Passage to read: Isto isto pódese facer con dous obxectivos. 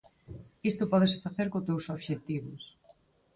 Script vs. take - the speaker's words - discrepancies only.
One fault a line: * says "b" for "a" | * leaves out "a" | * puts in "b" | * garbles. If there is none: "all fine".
* leaves out "isto"